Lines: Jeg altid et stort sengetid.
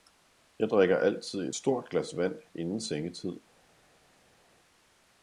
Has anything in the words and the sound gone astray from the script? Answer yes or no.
yes